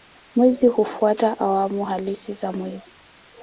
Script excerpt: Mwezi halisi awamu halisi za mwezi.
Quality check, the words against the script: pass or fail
fail